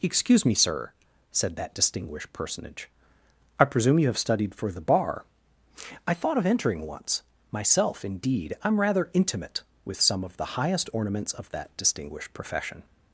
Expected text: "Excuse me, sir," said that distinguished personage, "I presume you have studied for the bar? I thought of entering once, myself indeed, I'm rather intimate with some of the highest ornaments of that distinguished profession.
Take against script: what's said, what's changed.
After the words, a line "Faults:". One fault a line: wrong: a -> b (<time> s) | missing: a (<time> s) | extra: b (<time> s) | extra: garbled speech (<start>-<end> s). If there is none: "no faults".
"Excuse me, sir," said that distinguished personage, "I presume you have studied for the bar? I thought of entering once, myself indeed, I'm rather intimate with some of the highest ornaments of that distinguished profession.
Faults:
no faults